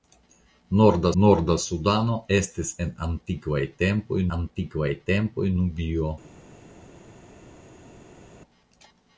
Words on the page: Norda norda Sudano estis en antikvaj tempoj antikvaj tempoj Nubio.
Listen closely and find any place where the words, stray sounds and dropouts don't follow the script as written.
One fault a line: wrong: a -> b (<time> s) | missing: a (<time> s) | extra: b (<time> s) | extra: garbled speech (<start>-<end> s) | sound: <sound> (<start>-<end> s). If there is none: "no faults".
no faults